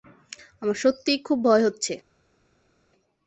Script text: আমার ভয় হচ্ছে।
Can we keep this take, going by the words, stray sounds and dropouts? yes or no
no